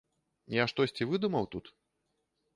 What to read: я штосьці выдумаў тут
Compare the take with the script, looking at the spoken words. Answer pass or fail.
pass